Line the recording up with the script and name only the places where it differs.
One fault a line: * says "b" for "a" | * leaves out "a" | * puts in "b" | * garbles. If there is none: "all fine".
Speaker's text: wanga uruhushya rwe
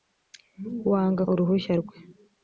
all fine